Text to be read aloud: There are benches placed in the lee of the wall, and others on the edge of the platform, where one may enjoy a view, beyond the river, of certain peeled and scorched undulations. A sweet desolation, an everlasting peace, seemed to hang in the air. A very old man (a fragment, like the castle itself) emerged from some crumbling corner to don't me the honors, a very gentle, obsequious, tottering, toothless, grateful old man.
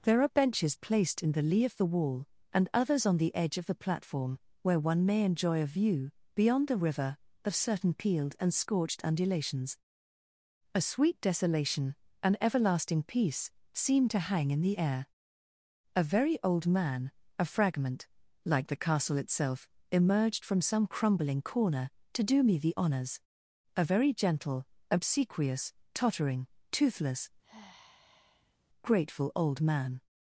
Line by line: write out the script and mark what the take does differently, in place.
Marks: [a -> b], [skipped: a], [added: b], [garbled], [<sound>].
There are benches placed in the lee of the wall, and others on the edge of the platform, where one may enjoy a view, beyond the river, of certain peeled and scorched undulations. A sweet desolation, an everlasting peace, seemed to hang in the air. A very old man (a fragment, like the castle itself) emerged from some crumbling corner to [don't -> do] me the honors, a very gentle, obsequious, tottering, toothless, [sigh] grateful old man.